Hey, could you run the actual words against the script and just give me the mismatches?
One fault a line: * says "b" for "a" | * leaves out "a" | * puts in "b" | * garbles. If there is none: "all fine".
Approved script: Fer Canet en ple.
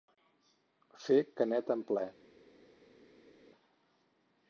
all fine